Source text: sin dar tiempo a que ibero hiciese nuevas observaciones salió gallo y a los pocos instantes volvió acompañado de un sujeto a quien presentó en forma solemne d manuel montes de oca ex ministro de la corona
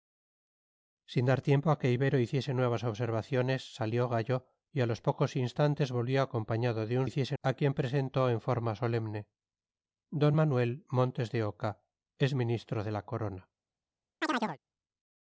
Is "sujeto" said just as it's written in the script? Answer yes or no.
no